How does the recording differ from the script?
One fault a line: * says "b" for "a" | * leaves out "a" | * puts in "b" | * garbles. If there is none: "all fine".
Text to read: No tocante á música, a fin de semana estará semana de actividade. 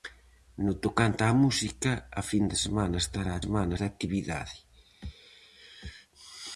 all fine